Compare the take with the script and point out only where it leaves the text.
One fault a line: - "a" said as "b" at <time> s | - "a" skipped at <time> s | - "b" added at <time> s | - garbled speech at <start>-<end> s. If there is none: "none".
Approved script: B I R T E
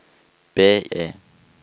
- "I R T" skipped at 0.8 s